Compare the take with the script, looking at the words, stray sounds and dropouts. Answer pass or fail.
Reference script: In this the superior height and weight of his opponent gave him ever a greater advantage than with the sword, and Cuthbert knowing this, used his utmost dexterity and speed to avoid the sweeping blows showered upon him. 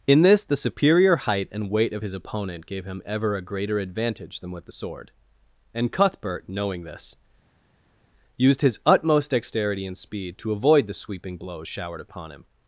pass